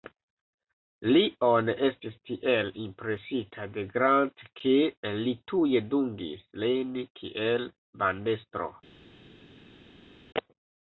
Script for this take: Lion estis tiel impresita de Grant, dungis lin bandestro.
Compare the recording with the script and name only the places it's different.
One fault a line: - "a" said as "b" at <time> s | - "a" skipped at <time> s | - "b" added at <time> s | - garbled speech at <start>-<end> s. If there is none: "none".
- "ke li tuj" added at 4.6 s
- "kiel" added at 7.2 s